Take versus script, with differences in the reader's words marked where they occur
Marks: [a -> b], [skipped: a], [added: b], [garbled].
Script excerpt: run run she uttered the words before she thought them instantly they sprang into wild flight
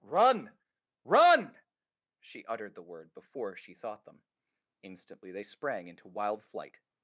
run run she uttered the [words -> word] before she thought them instantly they sprang into wild flight